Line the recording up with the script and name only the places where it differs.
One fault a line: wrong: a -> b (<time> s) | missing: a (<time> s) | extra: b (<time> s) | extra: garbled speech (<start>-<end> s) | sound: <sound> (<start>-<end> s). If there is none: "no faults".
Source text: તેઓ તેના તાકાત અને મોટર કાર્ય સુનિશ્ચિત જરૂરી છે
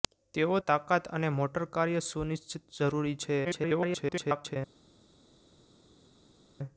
missing: તેના (0.6 s)
extra: garbled speech (3.4-4.6 s)